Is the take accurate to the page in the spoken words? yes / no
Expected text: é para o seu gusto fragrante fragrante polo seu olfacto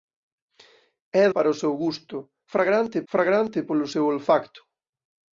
yes